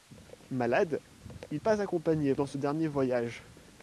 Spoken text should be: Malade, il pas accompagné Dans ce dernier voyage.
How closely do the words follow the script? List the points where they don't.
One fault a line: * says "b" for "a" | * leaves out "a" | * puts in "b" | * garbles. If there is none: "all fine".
all fine